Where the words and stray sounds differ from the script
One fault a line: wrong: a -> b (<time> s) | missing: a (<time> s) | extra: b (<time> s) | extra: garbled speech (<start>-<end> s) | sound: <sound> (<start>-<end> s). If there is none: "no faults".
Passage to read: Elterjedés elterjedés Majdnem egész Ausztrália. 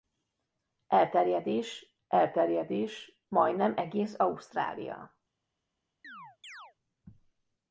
sound: chirp (6.0-6.7 s)